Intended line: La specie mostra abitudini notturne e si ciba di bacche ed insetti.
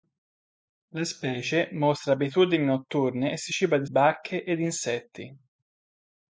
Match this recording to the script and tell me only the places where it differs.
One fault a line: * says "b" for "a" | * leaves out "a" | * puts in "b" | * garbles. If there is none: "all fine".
all fine